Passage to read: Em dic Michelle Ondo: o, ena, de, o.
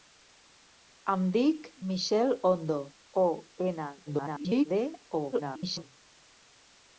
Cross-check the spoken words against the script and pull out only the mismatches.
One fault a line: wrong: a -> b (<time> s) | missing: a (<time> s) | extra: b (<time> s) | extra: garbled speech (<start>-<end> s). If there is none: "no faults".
extra: garbled speech (4.1-4.7 s)
extra: garbled speech (5.3-5.8 s)